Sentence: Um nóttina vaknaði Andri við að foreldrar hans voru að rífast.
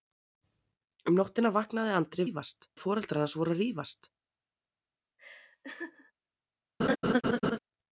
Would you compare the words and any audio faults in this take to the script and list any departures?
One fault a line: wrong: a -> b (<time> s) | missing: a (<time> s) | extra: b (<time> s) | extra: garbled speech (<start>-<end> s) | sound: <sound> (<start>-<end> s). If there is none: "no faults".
wrong: við -> rífast (2.2 s)
sound: laugh (5.2-6.1 s)
sound: laugh (6.8-7.6 s)